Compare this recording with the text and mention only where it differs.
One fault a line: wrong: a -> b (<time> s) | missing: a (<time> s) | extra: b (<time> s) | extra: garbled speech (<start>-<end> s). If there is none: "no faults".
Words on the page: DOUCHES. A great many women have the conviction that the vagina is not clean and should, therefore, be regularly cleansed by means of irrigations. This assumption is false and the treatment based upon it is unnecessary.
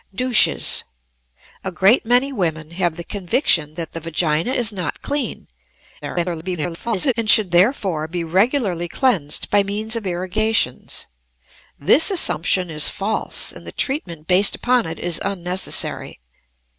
extra: garbled speech (6.0-7.1 s)